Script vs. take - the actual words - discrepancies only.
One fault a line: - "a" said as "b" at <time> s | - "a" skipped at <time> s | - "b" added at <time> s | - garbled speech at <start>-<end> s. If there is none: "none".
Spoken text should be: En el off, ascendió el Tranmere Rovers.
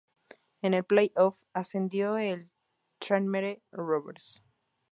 - "play" added at 0.8 s